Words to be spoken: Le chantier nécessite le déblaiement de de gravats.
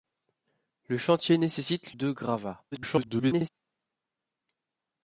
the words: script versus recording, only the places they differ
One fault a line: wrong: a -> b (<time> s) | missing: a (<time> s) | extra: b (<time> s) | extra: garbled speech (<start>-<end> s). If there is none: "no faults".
missing: le déblaiement de (1.9 s)
extra: garbled speech (2.7-3.5 s)